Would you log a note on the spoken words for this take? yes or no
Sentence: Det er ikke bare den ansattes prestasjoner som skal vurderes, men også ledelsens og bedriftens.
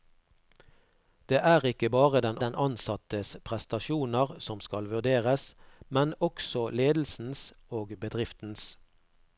yes